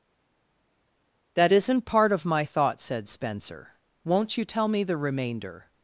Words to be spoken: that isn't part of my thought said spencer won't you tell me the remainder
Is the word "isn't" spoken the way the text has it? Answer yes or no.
yes